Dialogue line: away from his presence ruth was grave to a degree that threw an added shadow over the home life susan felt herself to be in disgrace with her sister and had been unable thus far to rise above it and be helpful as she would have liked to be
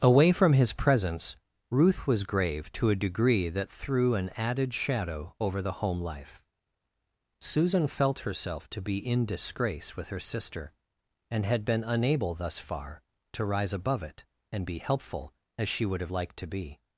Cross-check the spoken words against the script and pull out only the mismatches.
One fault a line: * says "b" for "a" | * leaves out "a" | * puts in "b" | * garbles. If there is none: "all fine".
all fine